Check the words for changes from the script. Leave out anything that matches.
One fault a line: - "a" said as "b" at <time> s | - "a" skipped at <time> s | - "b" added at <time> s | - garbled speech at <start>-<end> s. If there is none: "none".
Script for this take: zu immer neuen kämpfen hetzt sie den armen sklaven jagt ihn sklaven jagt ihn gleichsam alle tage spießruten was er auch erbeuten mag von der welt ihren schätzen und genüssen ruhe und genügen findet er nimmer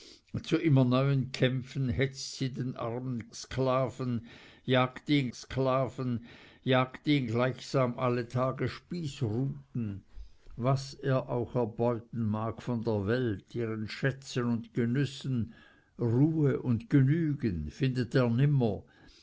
none